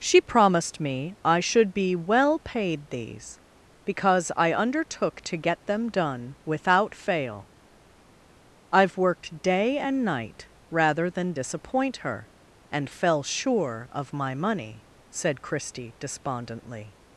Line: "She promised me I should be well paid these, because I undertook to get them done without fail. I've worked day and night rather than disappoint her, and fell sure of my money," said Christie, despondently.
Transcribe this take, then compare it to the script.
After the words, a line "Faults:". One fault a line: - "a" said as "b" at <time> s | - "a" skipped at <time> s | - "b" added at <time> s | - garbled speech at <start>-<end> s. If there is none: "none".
"She promised me I should be well paid these, because I undertook to get them done without fail. I've worked day and night rather than disappoint her, and fell sure of my money," said Christie, despondently.
Faults:
none